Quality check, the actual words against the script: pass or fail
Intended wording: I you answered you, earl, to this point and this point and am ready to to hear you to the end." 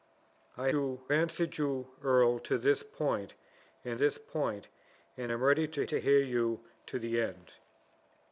pass